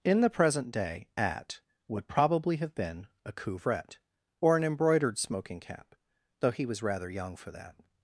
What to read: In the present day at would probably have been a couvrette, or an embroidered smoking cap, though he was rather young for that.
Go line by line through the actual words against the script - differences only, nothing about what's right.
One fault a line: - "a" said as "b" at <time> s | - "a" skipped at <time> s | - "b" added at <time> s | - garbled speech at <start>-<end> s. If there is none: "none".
none